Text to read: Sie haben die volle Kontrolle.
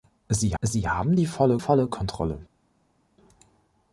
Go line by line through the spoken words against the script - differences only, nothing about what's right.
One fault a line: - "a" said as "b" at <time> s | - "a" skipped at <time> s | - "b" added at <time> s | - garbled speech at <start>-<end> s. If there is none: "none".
- "sie" added at 0.6 s
- "volle" added at 1.6 s